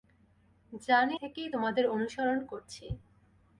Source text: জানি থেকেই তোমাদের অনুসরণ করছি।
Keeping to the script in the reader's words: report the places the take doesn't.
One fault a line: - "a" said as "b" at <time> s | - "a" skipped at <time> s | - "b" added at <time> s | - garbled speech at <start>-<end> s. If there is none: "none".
none